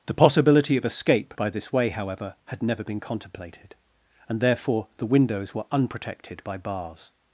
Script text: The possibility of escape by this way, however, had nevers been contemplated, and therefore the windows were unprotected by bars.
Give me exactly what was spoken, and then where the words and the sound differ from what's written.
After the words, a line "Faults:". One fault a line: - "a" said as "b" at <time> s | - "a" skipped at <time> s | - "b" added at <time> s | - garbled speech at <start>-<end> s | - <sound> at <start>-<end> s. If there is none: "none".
The possibility of escape by this way, however, had never been contemplated, and therefore the windows were unprotected by bars.
Faults:
- "nevers" said as "never" at 2.6 s